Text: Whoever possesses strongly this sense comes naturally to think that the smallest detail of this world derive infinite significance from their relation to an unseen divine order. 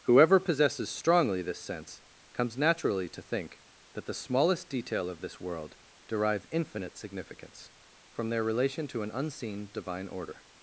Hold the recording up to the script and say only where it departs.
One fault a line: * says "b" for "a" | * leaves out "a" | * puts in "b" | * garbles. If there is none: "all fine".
all fine